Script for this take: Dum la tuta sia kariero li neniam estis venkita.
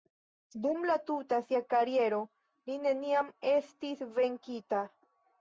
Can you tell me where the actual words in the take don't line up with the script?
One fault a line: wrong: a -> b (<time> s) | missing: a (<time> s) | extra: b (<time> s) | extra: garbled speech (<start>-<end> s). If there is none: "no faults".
no faults